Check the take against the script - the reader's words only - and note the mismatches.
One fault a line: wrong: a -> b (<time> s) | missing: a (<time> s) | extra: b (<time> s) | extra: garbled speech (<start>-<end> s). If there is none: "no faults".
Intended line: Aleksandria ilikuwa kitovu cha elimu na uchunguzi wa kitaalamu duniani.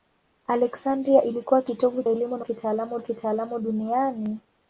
missing: cha (2.0 s)
wrong: uchunguzi -> kitaalamu (2.4 s)